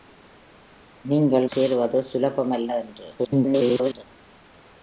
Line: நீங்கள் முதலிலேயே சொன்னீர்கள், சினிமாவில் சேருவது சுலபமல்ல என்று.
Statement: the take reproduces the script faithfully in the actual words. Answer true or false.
false